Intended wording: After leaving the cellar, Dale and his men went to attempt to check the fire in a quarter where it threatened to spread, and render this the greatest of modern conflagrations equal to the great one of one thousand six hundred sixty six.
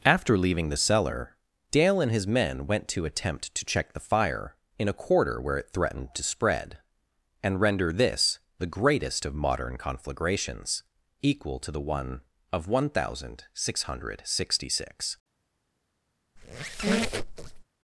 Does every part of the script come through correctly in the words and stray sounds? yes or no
no